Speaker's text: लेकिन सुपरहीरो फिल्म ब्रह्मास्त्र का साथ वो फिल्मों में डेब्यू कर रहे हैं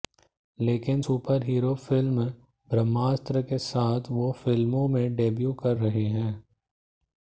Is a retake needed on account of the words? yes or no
yes